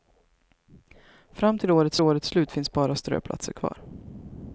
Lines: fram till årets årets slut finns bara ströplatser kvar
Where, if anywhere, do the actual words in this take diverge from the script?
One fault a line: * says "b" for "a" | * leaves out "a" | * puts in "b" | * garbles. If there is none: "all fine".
all fine